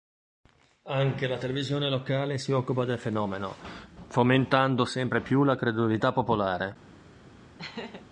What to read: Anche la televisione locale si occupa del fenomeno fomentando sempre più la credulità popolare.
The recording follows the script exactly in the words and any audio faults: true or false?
false